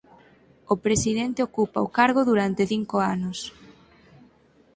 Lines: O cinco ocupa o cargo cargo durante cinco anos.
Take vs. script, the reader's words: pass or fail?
fail